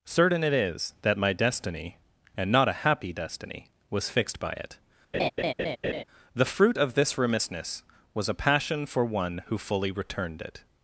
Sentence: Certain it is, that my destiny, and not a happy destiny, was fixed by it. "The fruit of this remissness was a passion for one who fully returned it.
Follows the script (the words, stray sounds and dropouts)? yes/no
no